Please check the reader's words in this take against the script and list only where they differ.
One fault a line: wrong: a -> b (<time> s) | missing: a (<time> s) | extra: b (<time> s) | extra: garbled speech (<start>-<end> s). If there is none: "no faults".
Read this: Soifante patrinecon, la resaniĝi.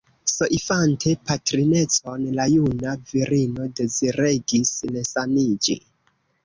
extra: juna virino deziregis (2.5 s)